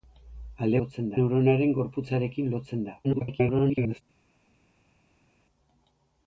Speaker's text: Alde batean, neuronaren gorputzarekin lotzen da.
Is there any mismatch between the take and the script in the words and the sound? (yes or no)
yes